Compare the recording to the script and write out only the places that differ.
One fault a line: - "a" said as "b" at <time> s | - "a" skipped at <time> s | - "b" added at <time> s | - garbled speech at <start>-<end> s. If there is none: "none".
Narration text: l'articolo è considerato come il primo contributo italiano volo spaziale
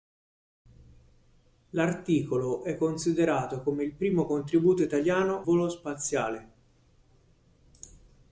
none